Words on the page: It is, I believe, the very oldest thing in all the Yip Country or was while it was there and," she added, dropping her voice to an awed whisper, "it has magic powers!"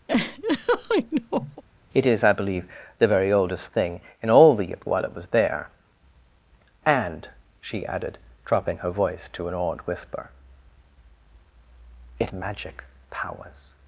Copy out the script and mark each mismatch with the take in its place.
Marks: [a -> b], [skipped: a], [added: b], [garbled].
It is, I believe, the very oldest thing in all the Yip [skipped: Country or was] while it was there and," she added, dropping her voice to an awed whisper, "it [skipped: has] magic powers!"